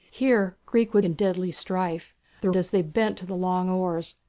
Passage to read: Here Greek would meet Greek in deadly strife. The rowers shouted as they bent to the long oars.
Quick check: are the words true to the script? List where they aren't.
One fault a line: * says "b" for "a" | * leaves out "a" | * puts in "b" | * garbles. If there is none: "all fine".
* leaves out "meet Greek"
* leaves out "rowers shouted"